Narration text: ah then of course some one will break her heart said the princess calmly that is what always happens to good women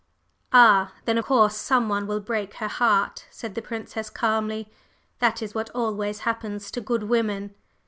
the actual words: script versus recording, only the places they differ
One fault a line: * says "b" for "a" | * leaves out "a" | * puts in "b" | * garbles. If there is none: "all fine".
* leaves out "of"